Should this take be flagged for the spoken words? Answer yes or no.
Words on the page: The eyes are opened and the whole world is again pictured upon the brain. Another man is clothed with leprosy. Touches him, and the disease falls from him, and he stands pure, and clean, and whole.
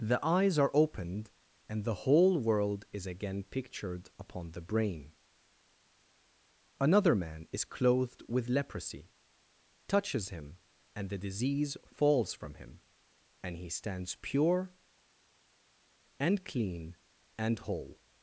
no